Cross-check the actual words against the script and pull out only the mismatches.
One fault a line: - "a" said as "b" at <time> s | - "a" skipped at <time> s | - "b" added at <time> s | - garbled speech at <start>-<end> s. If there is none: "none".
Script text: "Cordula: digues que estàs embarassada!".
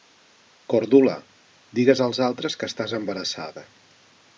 - "als altres" added at 2.1 s